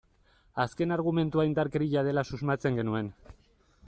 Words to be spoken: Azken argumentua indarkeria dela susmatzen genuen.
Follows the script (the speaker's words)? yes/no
yes